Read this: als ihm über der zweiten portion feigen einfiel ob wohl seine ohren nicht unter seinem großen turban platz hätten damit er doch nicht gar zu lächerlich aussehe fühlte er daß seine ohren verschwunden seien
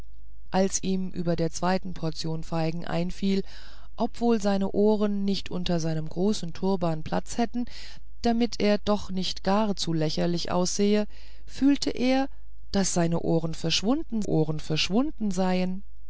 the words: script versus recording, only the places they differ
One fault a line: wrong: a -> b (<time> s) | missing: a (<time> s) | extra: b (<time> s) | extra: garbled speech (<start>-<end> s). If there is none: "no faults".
extra: ohren verschwunden (14.2 s)